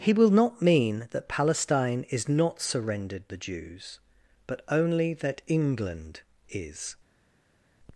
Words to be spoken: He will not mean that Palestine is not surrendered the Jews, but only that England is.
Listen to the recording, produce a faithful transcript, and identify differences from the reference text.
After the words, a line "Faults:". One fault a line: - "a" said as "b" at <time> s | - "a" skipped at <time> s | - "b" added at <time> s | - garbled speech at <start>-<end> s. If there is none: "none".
He will not mean that Palestine is not surrendered the Jews, but only that England is.
Faults:
none